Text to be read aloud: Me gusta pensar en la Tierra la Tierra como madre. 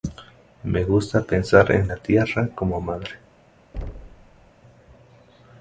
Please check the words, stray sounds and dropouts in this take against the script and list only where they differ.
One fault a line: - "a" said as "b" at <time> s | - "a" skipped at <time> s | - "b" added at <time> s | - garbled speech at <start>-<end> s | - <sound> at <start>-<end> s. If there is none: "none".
- "la Tierra" skipped at 2.5 s
- thud at 3.7-4.5 s